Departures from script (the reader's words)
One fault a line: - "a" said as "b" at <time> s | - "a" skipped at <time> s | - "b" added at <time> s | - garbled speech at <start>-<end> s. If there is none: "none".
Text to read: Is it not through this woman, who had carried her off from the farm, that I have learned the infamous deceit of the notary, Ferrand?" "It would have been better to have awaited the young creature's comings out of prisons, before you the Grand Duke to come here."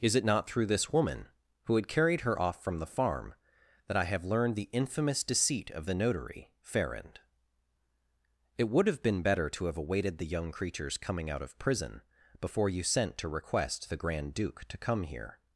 - "comings" said as "coming" at 11.0 s
- "prisons" said as "prison" at 11.6 s
- "sent to request" added at 12.8 s